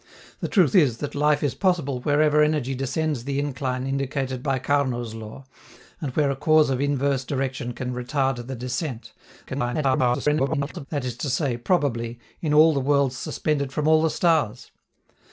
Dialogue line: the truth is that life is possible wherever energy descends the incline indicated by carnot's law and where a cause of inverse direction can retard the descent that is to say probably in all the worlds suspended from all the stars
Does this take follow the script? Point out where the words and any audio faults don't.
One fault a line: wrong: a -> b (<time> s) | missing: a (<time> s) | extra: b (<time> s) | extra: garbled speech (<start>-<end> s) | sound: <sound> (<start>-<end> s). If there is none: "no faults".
extra: garbled speech (9.5-10.9 s)